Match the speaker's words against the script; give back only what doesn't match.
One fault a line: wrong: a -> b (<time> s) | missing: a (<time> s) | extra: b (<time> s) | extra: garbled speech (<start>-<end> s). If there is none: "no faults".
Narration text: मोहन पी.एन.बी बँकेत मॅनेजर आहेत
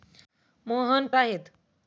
missing: पी.एन.बी बँकेत मॅनेजर (1.1 s)